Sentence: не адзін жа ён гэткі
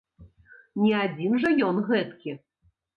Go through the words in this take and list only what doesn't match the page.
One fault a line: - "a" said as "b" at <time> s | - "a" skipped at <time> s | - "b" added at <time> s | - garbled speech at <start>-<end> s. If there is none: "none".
none